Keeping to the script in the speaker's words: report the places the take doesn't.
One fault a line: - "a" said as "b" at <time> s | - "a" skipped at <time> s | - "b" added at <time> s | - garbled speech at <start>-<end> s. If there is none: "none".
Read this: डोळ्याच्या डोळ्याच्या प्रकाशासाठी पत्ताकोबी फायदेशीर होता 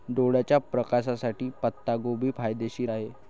- "डोळ्याच्या" skipped at 0.6 s
- "होता" said as "आहे" at 2.9 s